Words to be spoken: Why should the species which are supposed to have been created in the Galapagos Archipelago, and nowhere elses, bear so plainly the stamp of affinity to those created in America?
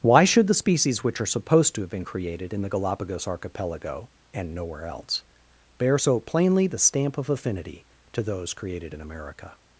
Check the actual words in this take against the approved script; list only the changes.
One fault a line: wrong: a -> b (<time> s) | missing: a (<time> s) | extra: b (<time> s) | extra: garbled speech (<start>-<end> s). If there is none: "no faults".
wrong: elses -> else (4.8 s)